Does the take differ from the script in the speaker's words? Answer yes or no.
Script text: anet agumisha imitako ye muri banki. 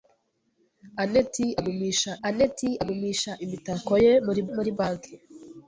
yes